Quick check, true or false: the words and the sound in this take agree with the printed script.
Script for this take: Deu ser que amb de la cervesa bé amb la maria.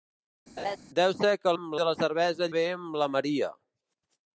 false